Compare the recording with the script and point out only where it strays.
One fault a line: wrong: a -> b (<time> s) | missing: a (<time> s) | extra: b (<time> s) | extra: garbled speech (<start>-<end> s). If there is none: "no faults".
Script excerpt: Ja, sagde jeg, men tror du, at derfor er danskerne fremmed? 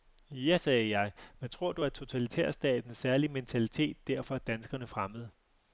extra: totalitærstatens særlige mentalitet (1.9 s)